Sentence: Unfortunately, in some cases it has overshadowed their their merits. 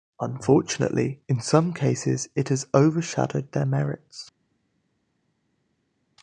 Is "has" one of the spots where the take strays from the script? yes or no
no